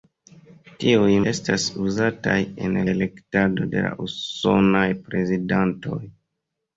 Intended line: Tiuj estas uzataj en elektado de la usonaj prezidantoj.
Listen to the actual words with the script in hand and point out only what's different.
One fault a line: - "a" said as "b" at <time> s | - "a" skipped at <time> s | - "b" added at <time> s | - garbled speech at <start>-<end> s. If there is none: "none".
none